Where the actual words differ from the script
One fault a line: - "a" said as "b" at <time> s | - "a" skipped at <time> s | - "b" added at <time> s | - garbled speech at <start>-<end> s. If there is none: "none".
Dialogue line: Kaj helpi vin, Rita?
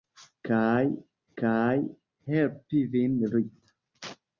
- "kaj" added at 1.4 s